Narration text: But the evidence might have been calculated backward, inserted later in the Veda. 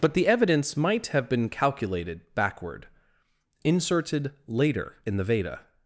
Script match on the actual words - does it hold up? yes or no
yes